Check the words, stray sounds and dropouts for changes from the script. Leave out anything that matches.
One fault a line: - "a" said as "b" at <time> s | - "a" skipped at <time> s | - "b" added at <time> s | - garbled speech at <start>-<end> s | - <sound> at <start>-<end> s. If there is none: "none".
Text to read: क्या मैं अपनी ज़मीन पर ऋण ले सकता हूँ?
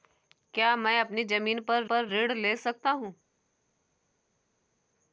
- "पर" added at 1.8 s